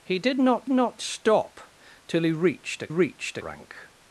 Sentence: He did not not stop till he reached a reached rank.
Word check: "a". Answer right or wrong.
right